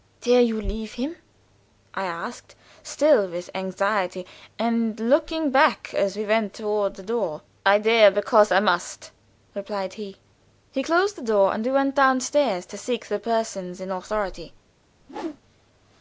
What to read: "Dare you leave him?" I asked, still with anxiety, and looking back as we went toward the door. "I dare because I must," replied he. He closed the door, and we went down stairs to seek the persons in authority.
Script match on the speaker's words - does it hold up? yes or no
yes